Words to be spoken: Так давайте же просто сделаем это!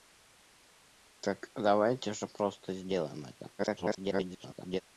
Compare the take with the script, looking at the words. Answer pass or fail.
fail